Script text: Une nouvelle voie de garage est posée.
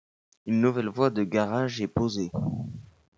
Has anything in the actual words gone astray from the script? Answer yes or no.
no